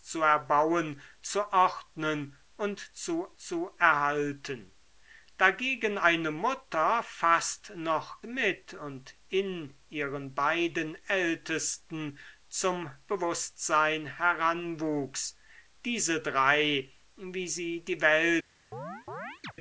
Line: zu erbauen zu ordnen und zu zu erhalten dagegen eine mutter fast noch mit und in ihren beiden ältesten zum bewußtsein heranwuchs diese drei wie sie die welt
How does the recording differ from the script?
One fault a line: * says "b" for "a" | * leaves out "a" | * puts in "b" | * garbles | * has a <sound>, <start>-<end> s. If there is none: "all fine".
* has a chirp, 18.7-19.5 s